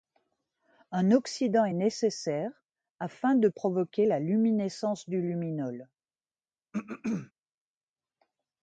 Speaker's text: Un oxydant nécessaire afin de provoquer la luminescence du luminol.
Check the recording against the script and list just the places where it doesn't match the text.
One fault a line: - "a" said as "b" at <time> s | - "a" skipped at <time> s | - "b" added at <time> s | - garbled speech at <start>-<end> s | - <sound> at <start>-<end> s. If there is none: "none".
- "est" added at 1.6 s
- throat clearing at 6.7-7.3 s